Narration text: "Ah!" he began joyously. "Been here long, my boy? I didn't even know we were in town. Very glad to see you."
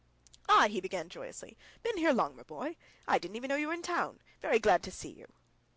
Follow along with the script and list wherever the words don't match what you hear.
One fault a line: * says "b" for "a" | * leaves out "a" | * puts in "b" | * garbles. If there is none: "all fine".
* says "you" for "we"